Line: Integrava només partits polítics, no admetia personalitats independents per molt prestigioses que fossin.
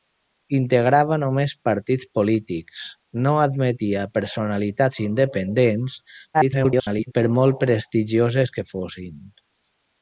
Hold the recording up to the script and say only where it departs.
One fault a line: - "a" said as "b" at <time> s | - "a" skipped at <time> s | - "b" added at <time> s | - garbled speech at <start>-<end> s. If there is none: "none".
- garbled speech at 6.3-7.1 s